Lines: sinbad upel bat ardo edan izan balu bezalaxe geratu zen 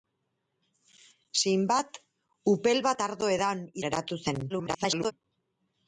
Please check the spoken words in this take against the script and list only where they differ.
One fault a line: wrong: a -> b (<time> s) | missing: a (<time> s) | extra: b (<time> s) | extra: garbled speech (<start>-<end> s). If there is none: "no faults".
missing: izan balu bezalaxe (3.6 s)
extra: garbled speech (4.5-5.1 s)